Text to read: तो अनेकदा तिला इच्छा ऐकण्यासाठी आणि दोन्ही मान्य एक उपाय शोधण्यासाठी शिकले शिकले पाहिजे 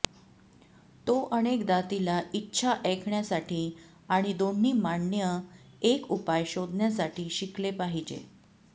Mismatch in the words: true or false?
true